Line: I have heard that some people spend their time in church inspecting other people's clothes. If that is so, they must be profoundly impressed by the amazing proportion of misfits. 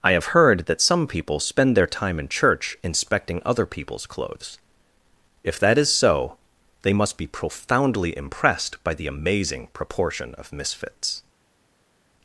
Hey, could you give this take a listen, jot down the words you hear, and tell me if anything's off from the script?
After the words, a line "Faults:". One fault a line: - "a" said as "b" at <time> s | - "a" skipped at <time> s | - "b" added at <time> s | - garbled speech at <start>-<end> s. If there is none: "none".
I have heard that some people spend their time in church inspecting other people's clothes. If that is so, they must be profoundly impressed by the amazing proportion of misfits.
Faults:
none